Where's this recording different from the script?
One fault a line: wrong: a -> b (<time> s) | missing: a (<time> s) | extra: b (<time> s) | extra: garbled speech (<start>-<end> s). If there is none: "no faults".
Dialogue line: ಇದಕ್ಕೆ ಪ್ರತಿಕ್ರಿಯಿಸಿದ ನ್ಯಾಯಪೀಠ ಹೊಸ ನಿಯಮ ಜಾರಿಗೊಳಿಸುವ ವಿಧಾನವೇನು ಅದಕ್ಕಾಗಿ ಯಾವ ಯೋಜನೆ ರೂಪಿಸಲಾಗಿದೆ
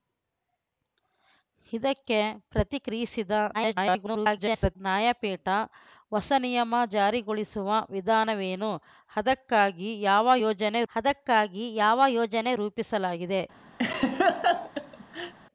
extra: garbled speech (3.5-4.8 s)
extra: ಅದಕ್ಕಾಗಿ ಯಾವ ಯೋಜನೆ (10.9 s)